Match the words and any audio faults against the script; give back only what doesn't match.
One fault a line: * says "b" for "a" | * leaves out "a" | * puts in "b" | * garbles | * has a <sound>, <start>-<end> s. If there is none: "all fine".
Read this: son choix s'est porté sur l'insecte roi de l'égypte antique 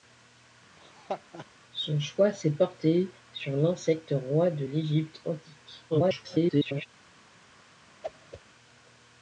* has a laugh, 0.8-1.5 s
* garbles
* has a whoosh, 8.0-8.4 s